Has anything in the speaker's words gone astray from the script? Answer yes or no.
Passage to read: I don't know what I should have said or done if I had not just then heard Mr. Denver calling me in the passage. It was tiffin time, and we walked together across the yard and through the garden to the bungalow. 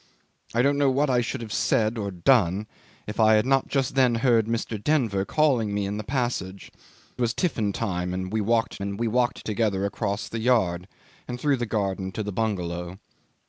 yes